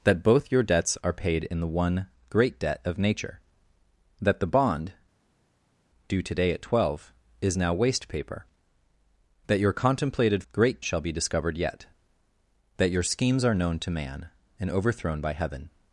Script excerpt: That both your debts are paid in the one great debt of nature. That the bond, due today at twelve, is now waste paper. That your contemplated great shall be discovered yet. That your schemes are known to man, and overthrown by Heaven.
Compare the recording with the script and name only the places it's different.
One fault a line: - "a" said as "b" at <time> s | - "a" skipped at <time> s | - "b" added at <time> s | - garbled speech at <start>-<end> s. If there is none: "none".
none